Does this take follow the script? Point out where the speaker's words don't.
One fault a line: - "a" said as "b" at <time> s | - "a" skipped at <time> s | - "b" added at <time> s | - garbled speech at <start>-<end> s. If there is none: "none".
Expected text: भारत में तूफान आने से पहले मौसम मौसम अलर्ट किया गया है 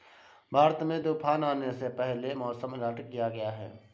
- "मौसम" skipped at 2.7 s